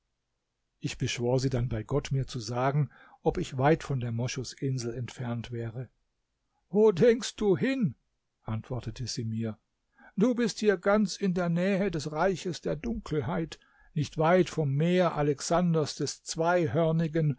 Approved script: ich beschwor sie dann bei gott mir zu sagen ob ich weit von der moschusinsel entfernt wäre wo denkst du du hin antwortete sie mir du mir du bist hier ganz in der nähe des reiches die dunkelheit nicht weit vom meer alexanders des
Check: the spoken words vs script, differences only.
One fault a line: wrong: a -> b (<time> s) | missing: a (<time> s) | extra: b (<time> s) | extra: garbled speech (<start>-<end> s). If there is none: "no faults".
missing: du (7.6 s)
missing: mir du (10.4 s)
wrong: die -> der (12.6 s)